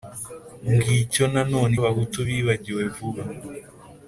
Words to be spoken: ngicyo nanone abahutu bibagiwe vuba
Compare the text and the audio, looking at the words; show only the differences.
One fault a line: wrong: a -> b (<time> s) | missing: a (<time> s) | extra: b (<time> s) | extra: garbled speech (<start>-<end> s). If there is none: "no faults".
no faults